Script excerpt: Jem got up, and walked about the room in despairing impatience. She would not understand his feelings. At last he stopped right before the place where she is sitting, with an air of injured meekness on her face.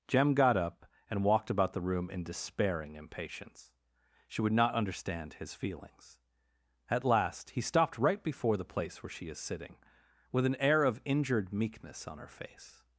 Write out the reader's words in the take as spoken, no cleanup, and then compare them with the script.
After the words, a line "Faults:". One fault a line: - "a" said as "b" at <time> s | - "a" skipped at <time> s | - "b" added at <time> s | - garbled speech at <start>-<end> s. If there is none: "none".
Jem got up, and walked about the room in despairing impatience. She would not understand his feelings. At last he stopped right before the place where she is sitting, with an air of injured meekness on her face.
Faults:
none